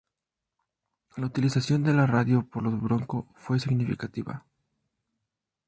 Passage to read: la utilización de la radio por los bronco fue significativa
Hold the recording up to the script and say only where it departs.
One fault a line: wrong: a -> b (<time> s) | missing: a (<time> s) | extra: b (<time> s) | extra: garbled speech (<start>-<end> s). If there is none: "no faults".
no faults